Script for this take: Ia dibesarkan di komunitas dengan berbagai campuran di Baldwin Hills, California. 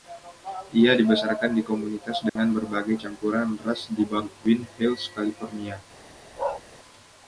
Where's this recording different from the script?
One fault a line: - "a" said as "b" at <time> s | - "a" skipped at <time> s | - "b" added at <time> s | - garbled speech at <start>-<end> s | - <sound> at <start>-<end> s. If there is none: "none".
- dropout at 2.3-2.4 s
- "ras" added at 3.6 s
- bark at 6.4-6.6 s